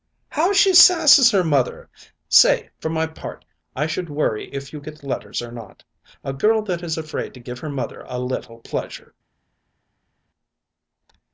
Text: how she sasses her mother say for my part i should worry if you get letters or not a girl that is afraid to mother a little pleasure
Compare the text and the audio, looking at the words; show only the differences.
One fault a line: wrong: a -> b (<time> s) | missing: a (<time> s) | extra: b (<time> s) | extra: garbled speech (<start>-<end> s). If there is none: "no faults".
extra: give her (7.4 s)